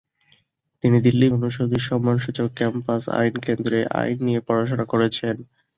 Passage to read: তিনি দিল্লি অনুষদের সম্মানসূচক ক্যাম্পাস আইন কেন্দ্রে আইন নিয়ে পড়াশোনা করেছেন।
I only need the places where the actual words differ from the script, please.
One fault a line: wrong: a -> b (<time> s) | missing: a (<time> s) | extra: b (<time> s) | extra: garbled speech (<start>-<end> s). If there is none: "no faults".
no faults